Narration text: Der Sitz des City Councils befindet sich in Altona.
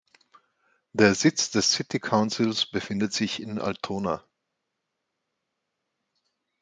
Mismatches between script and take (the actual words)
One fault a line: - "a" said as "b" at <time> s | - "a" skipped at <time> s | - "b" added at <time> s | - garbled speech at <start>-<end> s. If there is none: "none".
none